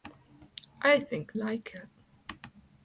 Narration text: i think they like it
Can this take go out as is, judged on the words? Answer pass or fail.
fail